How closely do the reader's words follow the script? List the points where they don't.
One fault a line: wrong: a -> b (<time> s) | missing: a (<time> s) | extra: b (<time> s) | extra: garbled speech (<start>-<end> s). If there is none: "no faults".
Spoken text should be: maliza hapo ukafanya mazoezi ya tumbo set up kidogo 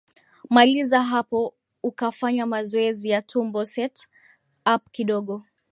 no faults